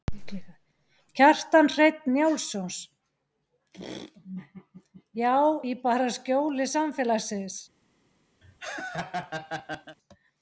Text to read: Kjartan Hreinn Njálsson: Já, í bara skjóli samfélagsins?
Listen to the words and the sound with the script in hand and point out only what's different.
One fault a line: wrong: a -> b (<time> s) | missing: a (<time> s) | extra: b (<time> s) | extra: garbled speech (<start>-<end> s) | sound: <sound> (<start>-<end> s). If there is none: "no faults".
sound: laugh (8.4-10.0 s)